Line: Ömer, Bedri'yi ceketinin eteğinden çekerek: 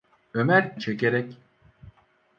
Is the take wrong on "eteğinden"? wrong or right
wrong